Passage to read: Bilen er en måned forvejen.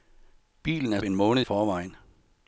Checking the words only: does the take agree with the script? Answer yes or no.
yes